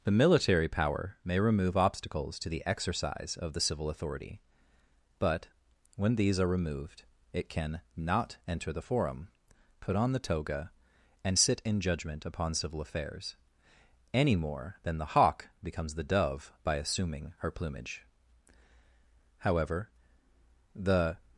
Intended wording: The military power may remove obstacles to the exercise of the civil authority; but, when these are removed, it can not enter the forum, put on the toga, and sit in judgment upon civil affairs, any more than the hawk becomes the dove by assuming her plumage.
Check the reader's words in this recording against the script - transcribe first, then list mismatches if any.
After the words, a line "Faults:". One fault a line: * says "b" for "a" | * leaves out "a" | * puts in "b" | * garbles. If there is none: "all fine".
The military power may remove obstacles to the exercise of the civil authority; but, when these are removed, it can not enter the forum, put on the toga, and sit in judgment upon civil affairs, any more than the hawk becomes the dove by assuming her plumage. However, the
Faults:
* puts in "However the"